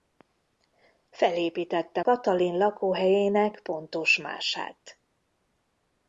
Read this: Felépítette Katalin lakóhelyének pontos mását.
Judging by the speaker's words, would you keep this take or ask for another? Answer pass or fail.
pass